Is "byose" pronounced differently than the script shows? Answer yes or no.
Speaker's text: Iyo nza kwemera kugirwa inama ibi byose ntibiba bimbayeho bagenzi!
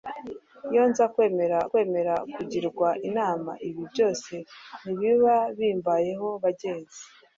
no